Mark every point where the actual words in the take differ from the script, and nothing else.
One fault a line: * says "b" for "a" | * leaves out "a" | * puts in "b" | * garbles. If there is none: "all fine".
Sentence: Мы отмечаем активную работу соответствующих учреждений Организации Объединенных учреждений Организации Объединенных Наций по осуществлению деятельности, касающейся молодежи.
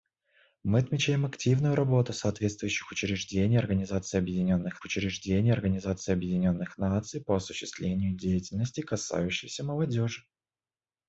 all fine